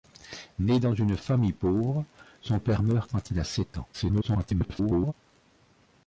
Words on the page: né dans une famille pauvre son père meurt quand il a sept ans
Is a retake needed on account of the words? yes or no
yes